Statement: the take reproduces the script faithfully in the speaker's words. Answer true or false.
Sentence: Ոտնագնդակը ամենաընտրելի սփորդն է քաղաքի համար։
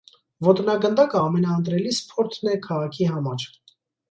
true